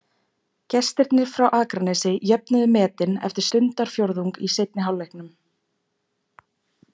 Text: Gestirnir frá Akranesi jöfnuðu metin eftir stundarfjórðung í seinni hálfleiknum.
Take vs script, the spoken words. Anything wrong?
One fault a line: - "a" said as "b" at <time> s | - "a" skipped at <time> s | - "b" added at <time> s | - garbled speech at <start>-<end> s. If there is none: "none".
none